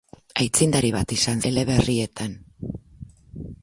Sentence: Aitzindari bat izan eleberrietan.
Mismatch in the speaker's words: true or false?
false